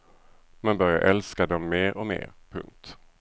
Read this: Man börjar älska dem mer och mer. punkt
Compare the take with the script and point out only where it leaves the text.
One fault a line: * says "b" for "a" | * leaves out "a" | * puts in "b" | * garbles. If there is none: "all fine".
all fine